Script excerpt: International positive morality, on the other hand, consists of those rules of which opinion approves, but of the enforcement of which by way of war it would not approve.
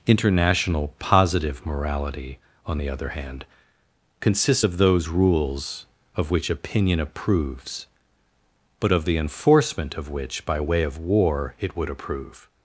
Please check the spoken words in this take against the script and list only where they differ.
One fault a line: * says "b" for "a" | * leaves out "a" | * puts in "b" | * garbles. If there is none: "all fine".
* leaves out "not"